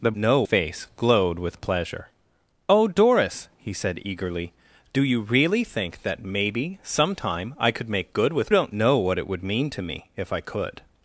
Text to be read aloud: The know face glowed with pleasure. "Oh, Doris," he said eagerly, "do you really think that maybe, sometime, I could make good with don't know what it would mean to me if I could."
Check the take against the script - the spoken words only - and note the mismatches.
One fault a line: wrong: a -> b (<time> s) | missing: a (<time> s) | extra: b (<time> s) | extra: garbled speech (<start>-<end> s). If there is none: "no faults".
no faults